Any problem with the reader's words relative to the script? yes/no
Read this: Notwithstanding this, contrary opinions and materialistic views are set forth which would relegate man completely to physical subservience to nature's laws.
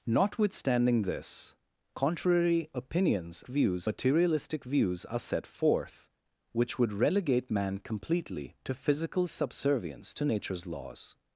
yes